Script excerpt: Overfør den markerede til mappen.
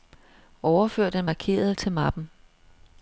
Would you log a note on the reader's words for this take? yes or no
no